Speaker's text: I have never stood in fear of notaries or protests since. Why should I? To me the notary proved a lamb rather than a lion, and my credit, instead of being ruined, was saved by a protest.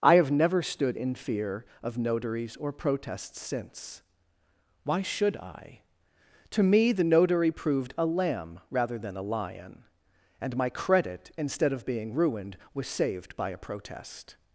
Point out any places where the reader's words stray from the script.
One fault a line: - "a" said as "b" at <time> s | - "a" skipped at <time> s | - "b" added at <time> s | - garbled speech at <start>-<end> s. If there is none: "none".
none